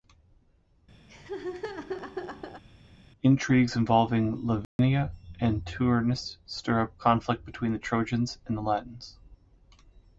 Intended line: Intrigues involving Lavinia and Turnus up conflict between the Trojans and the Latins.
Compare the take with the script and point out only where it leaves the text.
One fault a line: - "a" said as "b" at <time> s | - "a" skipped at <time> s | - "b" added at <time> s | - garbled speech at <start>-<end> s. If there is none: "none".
- "stir" added at 6.5 s